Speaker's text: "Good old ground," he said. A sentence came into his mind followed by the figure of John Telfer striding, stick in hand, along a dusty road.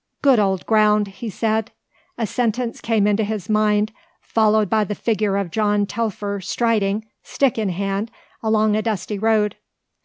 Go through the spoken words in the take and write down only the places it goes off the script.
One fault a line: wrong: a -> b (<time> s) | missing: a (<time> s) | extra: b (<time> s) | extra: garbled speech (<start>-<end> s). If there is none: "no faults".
no faults